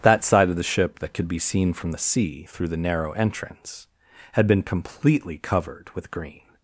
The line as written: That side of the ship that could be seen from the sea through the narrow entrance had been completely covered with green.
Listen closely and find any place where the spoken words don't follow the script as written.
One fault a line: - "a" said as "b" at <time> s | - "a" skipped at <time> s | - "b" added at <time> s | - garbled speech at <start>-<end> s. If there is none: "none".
none